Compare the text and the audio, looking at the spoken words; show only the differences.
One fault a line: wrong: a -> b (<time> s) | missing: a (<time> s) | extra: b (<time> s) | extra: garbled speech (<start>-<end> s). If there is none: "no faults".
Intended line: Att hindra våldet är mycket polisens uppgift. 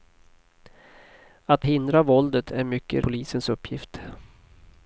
no faults